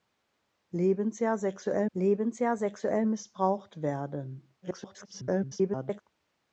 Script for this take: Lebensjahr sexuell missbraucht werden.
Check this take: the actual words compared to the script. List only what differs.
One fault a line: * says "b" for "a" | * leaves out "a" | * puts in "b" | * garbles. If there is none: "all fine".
* puts in "lebensjahr sexuell"
* garbles